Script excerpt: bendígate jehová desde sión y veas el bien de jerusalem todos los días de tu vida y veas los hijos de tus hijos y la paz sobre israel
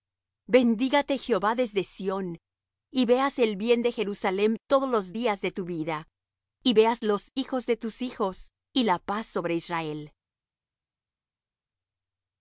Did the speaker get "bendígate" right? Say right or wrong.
right